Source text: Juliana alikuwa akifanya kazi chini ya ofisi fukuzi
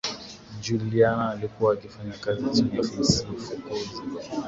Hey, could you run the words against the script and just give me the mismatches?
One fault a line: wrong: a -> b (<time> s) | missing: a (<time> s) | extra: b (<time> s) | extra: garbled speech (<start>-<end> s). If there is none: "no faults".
no faults